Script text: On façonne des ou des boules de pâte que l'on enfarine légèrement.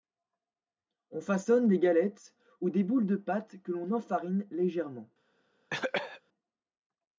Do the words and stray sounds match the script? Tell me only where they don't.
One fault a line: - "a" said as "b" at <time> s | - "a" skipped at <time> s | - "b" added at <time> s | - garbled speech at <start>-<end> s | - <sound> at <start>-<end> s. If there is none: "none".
- "galettes" added at 1.8 s
- cough at 5.7-6.2 s